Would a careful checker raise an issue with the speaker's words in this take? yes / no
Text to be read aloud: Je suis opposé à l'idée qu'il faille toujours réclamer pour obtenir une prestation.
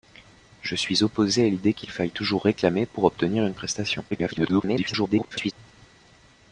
yes